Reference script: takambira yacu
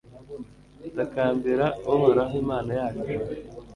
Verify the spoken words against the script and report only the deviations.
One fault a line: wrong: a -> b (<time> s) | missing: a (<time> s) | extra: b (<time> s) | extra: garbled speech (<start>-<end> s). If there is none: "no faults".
extra: uhoraho imana (1.9 s)